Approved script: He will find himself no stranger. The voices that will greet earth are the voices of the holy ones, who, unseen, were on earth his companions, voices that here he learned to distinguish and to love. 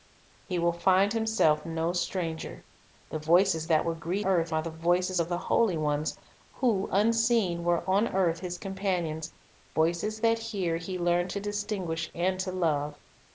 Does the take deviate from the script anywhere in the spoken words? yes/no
no